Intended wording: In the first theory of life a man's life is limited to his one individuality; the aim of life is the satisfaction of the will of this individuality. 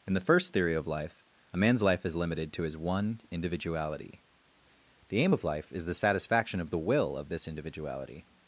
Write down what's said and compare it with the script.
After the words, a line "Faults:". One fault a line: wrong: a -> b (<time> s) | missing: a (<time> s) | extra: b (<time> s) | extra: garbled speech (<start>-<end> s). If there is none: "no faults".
In the first theory of life a man's life is limited to his one individuality; the aim of life is the satisfaction of the will of this individuality.
Faults:
no faults